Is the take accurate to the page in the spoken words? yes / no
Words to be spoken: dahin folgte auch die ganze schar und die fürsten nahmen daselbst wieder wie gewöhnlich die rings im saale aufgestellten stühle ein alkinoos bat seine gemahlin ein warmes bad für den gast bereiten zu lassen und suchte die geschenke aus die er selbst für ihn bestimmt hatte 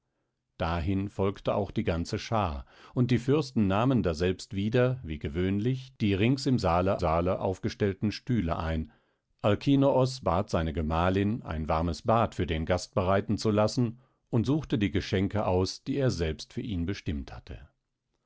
no